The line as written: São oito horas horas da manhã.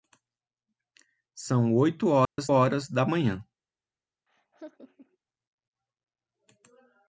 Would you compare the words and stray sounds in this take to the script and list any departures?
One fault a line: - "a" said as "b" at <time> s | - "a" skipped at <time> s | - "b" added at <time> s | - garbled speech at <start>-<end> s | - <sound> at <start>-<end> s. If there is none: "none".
- dropout at 2.2-2.4 s
- laugh at 4.3-5.2 s